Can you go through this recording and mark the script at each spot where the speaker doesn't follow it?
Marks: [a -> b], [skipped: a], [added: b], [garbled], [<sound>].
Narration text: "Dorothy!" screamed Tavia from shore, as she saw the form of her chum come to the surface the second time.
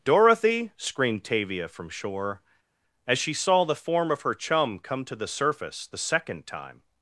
"Dorothy!" screamed Tavia from shore, as she saw the form of her chum come to the surface the second time.